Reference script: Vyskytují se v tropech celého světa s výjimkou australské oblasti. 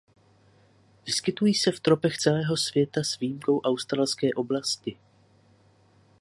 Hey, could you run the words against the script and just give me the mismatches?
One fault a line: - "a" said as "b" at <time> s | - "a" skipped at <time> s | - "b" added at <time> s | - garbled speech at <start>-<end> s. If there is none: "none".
none